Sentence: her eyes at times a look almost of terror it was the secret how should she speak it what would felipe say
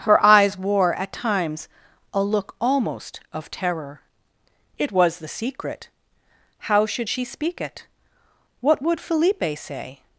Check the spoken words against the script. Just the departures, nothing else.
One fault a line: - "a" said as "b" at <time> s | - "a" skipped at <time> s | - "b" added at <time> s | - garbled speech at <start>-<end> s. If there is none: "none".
- "wore" added at 0.6 s